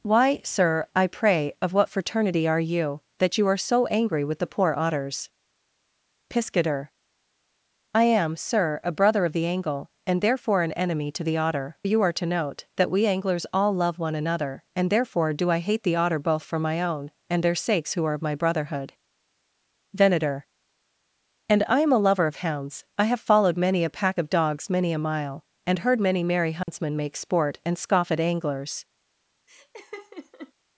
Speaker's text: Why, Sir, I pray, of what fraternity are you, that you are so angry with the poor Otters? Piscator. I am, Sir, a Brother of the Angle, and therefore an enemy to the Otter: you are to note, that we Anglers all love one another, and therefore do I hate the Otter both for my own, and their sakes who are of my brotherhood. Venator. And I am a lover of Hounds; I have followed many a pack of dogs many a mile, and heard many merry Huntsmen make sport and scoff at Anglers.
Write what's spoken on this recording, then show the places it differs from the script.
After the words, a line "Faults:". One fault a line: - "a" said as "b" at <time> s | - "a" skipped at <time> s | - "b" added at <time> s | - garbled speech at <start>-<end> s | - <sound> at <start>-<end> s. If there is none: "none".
Why, Sir, I pray, of what fraternity are you, that you are so angry with the poor Otters? Piscator. I am, Sir, a Brother of the Angle, and therefore an enemy to the Otter: you are to note, that we Anglers all love one another, and therefore do I hate the Otter both for my own, and their sakes who are of my brotherhood. Venator. And I am a lover of Hounds; I have followed many a pack of dogs many a mile, and heard many merry Huntsmen make sport and scoff at Anglers.
Faults:
- dropout at 26.6-26.7 s
- laugh at 29.5-30.5 s